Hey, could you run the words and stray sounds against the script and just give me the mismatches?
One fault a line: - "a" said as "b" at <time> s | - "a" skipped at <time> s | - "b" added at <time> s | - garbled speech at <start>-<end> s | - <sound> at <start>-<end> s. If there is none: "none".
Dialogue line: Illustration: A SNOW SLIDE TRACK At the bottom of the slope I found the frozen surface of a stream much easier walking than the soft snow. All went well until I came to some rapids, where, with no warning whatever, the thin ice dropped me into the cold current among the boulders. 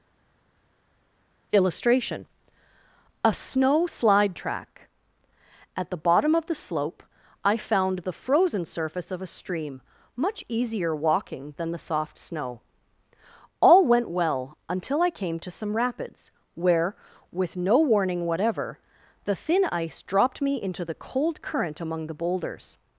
none